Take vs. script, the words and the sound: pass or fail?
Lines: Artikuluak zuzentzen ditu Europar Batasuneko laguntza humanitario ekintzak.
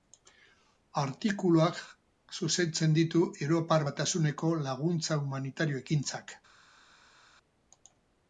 pass